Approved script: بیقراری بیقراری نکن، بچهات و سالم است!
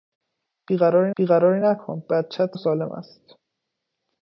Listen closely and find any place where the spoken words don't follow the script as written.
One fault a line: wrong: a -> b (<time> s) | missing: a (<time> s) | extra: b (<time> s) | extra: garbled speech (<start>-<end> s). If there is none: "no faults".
no faults